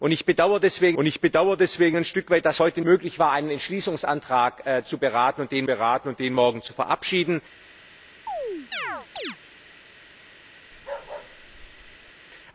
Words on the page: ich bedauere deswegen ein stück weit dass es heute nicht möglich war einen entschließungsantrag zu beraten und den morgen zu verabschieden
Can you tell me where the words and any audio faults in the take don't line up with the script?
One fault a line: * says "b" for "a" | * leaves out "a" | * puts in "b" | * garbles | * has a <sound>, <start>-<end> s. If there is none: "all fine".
* puts in "ich bedauere deswegen"
* leaves out "nicht"
* puts in "beraten und den"
* has a chirp, 8.3-9.4 s
* has a bark, 10.7-12.1 s